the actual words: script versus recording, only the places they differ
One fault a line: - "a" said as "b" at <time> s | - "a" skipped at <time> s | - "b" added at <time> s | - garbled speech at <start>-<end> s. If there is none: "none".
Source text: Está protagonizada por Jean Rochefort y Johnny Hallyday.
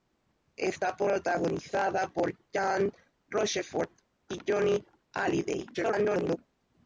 - garbled speech at 5.7-6.4 s